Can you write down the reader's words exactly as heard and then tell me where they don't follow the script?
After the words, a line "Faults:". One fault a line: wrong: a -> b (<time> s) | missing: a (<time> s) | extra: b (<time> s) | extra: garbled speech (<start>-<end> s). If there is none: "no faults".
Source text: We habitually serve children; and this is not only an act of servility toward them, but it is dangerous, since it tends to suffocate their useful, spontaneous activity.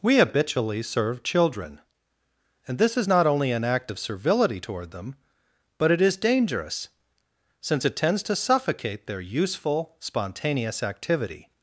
We habitually serve children; and this is not only an act of servility toward them, but it is dangerous, since it tends to suffocate their useful, spontaneous activity.
Faults:
no faults